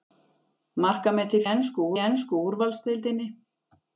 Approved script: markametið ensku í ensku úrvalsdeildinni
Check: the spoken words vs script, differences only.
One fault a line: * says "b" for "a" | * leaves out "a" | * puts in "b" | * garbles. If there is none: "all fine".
all fine